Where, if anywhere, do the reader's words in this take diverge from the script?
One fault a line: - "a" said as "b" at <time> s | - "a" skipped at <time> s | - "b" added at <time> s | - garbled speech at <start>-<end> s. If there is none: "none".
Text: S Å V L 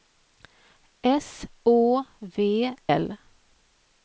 none